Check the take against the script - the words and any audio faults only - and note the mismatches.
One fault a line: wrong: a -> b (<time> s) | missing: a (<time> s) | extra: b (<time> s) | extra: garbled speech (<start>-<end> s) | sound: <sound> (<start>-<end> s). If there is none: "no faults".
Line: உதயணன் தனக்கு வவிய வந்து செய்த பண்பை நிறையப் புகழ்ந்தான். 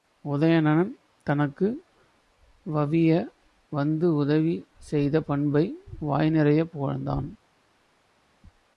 extra: உதவி (4.2 s)
extra: வாய் (6.0 s)